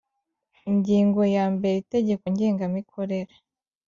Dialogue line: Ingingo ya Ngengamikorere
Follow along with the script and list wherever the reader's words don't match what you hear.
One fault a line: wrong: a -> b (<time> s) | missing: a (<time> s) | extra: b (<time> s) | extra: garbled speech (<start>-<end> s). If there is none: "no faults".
extra: mbere Itegeko (1.6 s)